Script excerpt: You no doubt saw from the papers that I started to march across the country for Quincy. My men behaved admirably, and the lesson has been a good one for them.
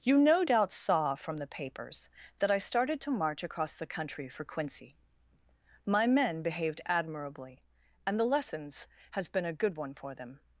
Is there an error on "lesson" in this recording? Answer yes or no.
yes